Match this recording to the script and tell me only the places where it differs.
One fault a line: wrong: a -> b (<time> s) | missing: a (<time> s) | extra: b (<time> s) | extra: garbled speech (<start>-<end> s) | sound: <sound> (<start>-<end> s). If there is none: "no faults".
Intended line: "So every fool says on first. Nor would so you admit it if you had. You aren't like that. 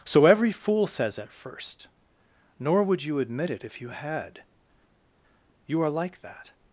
wrong: on -> at (1.2 s)
missing: so (3.0 s)
wrong: aren't -> are (5.8 s)